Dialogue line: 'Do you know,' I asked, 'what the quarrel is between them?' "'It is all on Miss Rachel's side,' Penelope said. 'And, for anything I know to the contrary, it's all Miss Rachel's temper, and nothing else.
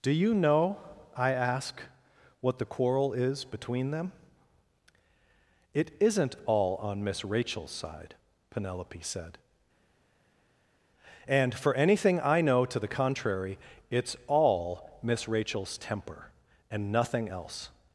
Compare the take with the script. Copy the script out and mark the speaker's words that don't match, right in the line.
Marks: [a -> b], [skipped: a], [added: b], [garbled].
'Do you know,' I [asked, -> ask] 'what the quarrel is between them?' "'It [is -> isn't] all on Miss Rachel's side,' Penelope said. 'And, for anything I know to the contrary, it's all Miss Rachel's temper, and nothing else.